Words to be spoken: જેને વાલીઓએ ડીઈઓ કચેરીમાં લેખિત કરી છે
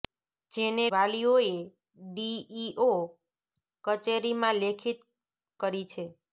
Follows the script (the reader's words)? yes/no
yes